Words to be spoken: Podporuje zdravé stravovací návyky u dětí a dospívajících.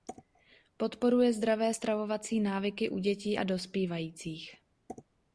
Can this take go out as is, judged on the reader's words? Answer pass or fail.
pass